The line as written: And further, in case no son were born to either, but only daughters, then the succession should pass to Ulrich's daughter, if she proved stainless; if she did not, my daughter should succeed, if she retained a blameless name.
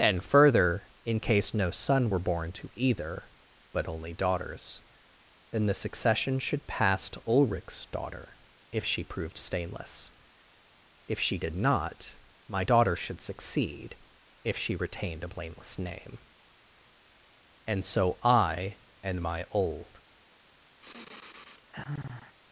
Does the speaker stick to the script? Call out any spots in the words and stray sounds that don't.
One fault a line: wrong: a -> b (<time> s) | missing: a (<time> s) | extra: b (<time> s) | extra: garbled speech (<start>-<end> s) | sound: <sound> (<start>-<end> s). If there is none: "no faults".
extra: And so I and my old (17.6 s)
sound: sigh (20.8-22.4 s)